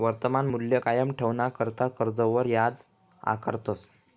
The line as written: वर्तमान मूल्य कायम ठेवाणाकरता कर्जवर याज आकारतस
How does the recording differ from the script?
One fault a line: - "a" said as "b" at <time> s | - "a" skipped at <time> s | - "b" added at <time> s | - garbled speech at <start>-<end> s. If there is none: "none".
none